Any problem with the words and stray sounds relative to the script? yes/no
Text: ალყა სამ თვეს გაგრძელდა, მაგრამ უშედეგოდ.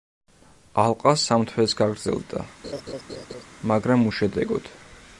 yes